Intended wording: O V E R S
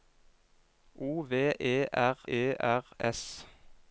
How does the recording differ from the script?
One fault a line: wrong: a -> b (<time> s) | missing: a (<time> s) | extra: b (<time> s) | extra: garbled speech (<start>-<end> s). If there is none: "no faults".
extra: E R (2.3 s)